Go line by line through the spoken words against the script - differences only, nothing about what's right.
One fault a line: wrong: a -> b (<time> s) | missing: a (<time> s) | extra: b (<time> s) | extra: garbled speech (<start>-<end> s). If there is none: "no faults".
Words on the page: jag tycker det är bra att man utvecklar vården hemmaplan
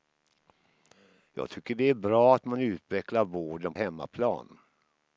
no faults